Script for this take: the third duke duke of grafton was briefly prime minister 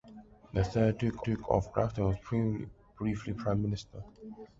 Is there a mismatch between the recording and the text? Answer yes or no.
no